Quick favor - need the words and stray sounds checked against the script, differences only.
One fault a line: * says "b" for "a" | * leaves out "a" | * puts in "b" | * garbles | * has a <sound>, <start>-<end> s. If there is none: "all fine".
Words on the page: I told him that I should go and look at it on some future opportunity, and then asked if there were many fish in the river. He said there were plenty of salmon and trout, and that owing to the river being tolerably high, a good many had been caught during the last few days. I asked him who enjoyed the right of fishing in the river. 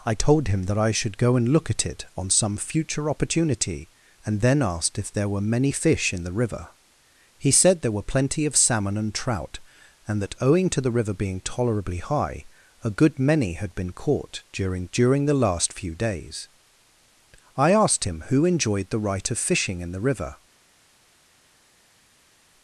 * puts in "during"